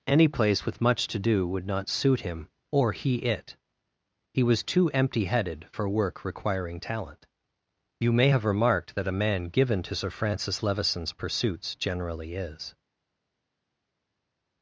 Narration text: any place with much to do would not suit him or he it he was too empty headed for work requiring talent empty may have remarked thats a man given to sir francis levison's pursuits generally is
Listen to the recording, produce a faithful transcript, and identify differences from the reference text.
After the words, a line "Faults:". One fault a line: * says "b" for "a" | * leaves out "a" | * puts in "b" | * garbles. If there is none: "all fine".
any place with much to do would not suit him or he it he was too empty headed for work requiring talent you may have remarked that a man given to sir francis levison's pursuits generally is
Faults:
* says "you" for "empty"
* says "that" for "thats"